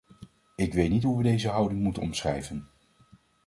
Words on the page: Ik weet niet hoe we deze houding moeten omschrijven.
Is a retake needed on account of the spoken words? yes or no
no